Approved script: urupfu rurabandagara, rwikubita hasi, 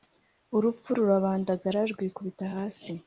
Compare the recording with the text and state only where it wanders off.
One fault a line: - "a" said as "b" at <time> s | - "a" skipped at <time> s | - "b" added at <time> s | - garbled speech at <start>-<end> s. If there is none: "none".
none